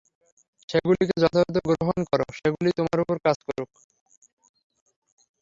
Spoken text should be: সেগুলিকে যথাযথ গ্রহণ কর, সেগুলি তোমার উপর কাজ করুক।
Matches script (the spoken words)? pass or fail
pass